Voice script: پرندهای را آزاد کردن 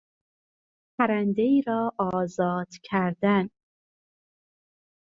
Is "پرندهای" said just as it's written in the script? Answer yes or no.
yes